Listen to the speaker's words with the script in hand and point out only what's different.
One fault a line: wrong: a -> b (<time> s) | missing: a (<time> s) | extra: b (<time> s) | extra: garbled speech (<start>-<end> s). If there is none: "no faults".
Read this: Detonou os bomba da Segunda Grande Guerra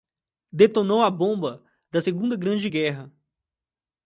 wrong: os -> a (1.0 s)